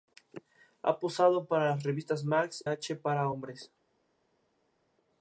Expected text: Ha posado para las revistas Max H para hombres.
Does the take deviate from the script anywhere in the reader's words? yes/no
no